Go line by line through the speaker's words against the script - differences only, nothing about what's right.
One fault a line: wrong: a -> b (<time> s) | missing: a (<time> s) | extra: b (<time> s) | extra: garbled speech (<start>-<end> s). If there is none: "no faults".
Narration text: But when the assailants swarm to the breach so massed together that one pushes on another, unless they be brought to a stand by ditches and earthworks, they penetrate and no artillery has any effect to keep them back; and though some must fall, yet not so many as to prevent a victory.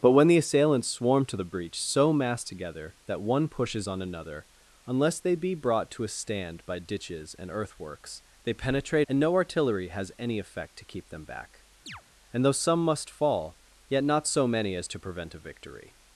no faults